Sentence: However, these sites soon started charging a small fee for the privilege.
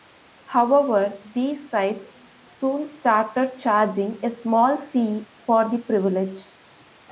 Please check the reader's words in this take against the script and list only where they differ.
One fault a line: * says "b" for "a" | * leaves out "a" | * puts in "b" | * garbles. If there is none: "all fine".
all fine